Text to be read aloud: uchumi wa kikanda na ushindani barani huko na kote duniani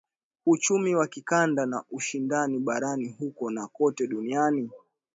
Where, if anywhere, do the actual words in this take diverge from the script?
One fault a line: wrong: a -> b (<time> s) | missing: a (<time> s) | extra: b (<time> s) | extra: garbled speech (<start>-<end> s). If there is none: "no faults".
no faults